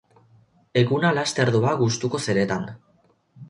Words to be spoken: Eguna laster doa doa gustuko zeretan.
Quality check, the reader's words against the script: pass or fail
fail